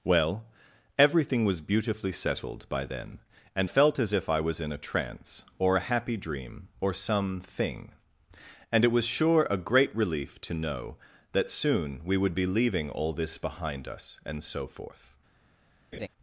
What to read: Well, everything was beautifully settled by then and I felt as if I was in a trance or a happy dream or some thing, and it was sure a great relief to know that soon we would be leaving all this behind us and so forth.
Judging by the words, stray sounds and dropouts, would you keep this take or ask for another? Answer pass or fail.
fail